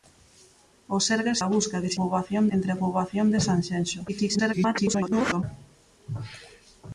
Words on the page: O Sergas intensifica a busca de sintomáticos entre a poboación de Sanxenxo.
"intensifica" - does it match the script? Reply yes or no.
no